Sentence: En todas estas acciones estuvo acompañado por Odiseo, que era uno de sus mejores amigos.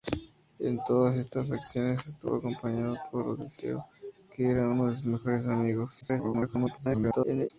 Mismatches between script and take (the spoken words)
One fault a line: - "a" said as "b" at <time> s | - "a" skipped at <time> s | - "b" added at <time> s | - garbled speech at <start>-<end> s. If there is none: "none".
- garbled speech at 6.0-7.5 s